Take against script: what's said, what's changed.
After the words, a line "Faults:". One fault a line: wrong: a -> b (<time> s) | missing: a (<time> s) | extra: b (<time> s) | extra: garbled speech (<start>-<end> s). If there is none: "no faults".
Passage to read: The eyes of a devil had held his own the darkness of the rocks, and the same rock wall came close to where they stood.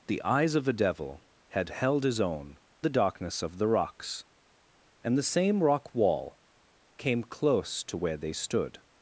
The eyes of a devil had held his own the darkness of the rocks, and the same rock wall came close to where they stood.
Faults:
no faults